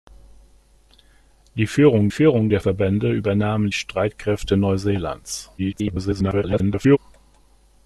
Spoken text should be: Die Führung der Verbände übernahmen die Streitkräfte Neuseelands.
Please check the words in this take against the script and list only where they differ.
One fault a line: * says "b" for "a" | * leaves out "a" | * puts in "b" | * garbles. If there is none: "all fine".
* puts in "Führung"
* leaves out "die"
* garbles